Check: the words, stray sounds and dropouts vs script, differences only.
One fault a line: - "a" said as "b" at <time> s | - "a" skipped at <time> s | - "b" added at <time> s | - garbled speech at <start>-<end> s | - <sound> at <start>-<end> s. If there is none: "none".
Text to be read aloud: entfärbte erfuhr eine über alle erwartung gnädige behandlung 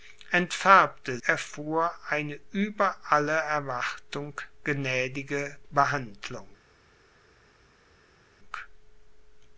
none